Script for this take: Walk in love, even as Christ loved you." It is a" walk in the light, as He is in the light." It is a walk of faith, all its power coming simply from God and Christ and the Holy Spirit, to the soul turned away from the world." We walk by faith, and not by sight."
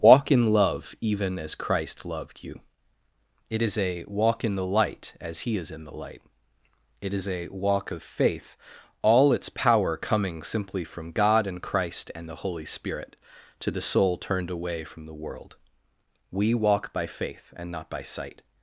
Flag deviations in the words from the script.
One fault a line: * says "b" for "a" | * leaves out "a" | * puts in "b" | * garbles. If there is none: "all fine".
all fine